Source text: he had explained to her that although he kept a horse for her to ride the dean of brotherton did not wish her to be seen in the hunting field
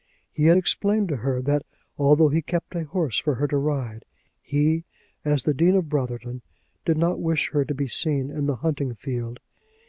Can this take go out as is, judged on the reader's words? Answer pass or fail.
fail